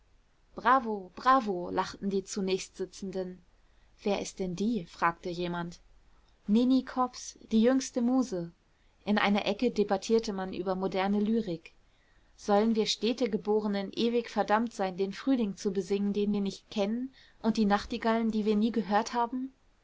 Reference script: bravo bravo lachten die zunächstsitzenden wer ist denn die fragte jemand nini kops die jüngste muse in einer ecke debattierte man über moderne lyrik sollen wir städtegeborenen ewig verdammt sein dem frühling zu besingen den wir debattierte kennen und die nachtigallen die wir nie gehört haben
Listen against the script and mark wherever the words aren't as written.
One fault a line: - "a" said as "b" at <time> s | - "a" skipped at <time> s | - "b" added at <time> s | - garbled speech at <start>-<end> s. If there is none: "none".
- "dem" said as "den" at 15.0 s
- "debattierte" said as "nicht" at 16.4 s